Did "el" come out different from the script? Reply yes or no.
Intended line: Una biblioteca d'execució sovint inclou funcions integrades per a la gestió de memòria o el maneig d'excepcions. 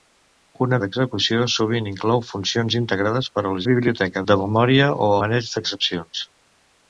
yes